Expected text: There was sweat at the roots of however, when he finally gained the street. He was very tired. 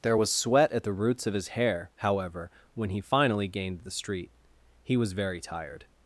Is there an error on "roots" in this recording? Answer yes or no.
no